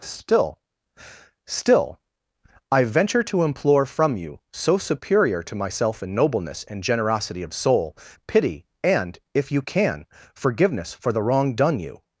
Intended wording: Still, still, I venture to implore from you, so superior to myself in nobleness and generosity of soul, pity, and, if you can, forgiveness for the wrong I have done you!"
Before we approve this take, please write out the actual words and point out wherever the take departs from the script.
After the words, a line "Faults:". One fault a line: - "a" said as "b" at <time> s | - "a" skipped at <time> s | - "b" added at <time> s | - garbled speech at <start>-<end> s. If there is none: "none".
Still, still, I venture to implore from you, so superior to myself in nobleness and generosity of soul, pity, and, if you can, forgiveness for the wrong done you!"
Faults:
- "I have" skipped at 11.5 s